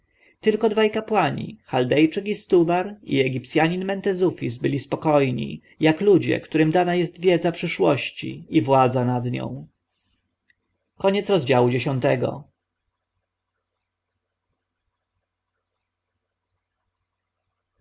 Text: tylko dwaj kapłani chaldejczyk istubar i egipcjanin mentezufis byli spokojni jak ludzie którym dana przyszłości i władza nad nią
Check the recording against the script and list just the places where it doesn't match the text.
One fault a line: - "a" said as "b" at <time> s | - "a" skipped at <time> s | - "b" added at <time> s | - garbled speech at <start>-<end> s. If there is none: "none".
- "jest wiedza" added at 7.0 s